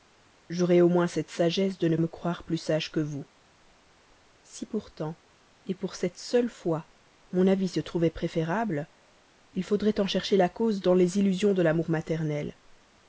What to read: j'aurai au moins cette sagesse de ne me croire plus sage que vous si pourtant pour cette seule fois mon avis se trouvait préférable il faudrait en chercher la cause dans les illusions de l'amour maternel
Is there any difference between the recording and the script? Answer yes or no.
no